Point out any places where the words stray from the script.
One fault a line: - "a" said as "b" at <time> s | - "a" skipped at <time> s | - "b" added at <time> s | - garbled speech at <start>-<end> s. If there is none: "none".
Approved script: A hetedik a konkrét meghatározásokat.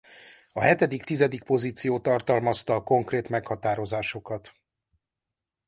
- "tizedik pozíció tartalmazta" added at 1.0 s